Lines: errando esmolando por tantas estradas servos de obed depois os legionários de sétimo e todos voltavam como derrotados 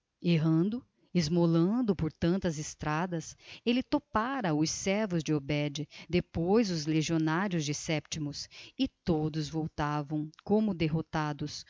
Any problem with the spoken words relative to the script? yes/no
yes